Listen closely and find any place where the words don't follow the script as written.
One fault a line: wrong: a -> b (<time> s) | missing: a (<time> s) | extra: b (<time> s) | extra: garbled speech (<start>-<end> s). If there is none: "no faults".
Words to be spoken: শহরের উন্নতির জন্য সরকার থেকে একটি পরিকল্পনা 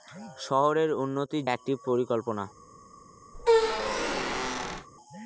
missing: জন্য সরকার থেকে (1.4 s)